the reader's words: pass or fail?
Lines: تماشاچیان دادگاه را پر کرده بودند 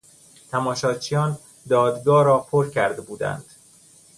pass